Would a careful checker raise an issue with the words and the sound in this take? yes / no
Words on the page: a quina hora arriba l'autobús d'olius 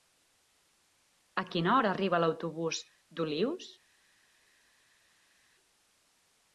no